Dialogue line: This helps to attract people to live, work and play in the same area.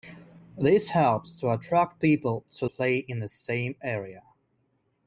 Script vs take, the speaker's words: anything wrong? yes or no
yes